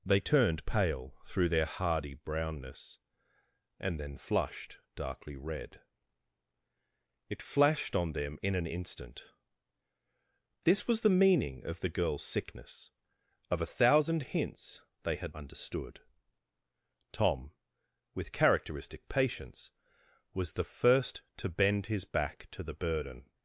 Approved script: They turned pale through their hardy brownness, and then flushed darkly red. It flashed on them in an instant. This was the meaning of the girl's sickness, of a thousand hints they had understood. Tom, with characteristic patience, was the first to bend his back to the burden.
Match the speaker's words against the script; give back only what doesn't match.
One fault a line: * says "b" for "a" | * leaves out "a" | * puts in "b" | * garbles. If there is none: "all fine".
all fine